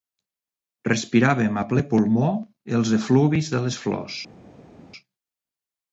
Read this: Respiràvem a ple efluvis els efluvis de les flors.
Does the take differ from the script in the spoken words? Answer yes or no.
yes